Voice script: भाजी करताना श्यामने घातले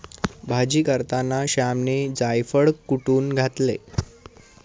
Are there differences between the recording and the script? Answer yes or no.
yes